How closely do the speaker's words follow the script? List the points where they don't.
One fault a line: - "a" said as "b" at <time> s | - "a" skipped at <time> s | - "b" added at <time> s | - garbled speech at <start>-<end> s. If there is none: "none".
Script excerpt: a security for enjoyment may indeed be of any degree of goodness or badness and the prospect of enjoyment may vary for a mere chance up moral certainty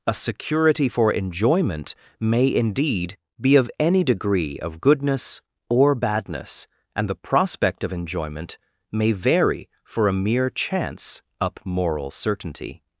none